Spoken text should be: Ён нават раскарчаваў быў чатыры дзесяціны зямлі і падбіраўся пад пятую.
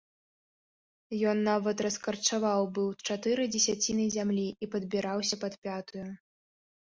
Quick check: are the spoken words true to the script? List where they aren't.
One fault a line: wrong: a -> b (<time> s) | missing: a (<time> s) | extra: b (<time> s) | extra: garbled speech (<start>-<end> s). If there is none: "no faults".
no faults